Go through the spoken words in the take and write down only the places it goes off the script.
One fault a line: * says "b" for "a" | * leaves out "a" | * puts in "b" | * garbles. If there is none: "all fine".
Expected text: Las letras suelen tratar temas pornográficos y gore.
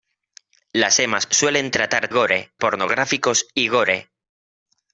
* says "temas" for "letras"
* says "gore" for "temas"